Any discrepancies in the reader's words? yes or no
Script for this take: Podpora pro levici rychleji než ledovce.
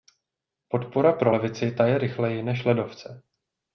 yes